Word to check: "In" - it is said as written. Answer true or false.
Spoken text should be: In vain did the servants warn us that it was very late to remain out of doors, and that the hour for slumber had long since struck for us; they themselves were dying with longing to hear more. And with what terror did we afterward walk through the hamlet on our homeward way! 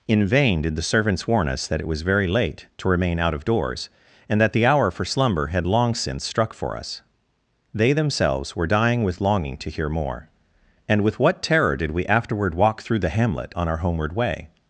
true